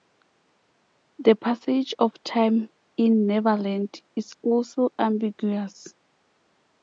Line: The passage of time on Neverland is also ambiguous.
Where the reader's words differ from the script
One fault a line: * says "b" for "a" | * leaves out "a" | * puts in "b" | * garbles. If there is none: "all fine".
* says "in" for "on"